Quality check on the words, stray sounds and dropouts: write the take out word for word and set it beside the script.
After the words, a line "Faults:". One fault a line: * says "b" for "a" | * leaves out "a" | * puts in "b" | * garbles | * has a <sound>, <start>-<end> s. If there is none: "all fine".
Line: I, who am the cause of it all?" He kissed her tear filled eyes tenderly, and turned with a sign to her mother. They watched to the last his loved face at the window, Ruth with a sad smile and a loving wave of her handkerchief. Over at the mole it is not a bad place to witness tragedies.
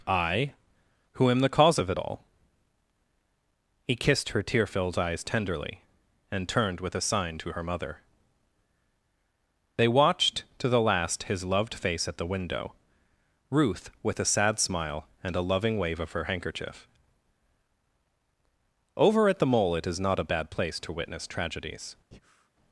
I, who am the cause of it all?" He kissed her tear filled eyes tenderly, and turned with a sign to her mother. They watched to the last his loved face at the window, Ruth with a sad smile and a loving wave of her handkerchief. Over at the mole it is not a bad place to witness tragedies.
Faults:
* has a breath, 22.1-22.5 s